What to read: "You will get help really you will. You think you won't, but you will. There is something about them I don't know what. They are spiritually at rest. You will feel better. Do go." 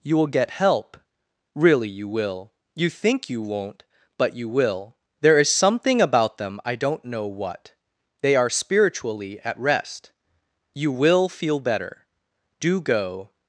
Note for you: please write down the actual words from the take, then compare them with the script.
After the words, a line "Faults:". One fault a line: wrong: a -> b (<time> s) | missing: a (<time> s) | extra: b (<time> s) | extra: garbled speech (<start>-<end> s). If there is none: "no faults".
"You will get help really you will. You think you won't, but you will. There is something about them I don't know what. They are spiritually at rest. You will feel better. Do go."
Faults:
no faults